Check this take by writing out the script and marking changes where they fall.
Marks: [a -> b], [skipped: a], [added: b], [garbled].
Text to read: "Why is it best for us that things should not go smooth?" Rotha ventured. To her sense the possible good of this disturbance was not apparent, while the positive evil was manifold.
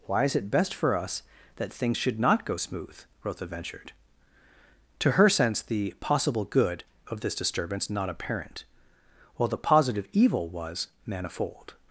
"Why is it best for us that things should not go smooth?" Rotha ventured. To her sense the possible good of this disturbance [skipped: was] not apparent, while the positive evil was manifold.